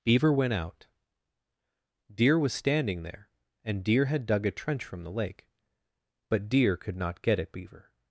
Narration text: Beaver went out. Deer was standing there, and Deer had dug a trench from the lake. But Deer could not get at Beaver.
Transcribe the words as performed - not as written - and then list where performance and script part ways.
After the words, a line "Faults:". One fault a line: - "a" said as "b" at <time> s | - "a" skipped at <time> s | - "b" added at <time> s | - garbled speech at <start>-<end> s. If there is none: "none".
Beaver went out. Deer was standing there, and Deer had dug a trench from the lake. But Deer could not get at Beaver.
Faults:
none